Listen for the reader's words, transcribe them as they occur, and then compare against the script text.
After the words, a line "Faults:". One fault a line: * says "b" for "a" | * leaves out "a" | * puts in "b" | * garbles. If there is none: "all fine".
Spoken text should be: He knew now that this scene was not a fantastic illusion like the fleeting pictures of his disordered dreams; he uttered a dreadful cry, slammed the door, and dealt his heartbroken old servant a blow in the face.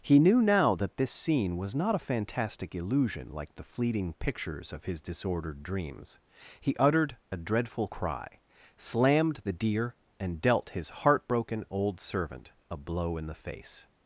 He knew now that this scene was not a fantastic illusion like the fleeting pictures of his disordered dreams; he uttered a dreadful cry, slammed the deer, and dealt his heartbroken old servant a blow in the face.
Faults:
* says "deer" for "door"